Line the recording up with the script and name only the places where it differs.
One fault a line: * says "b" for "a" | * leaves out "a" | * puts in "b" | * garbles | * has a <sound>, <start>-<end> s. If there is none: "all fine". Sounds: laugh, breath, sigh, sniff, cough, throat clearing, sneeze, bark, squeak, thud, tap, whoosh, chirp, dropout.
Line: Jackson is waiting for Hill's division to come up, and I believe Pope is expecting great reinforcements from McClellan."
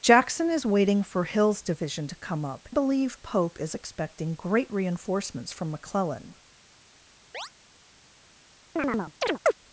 * leaves out "and I"
* has a chirp, 7.3-7.5 s
* has a chirp, 8.8-9.5 s